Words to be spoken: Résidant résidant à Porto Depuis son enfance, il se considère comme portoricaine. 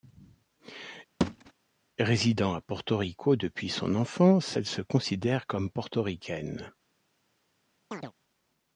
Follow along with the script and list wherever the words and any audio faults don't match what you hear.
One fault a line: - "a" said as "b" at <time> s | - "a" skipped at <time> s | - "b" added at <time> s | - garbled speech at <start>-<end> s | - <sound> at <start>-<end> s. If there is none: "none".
- thud at 1.2-1.5 s
- "résidant" skipped at 2.5 s
- "Rico" added at 3.0 s
- "il" said as "elle" at 4.6 s
- chirp at 7.9-8.1 s